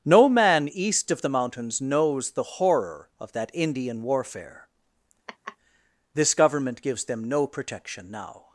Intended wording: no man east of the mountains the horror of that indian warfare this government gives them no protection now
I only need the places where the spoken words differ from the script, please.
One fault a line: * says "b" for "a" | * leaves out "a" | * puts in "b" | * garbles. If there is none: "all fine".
* puts in "knows"